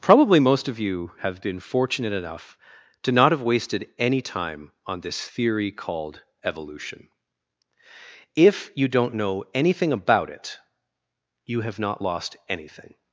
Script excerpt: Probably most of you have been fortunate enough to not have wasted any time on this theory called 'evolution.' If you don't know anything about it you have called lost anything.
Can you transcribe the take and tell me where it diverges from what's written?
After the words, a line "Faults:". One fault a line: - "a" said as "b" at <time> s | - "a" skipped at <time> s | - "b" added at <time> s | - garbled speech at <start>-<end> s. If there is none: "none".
Probably most of you have been fortunate enough to not have wasted any time on this theory called 'evolution.' If you don't know anything about it you have not lost anything.
Faults:
- "called" said as "not" at 11.8 s